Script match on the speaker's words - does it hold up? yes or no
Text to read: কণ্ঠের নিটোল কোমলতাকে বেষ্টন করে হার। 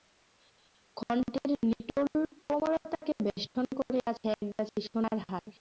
no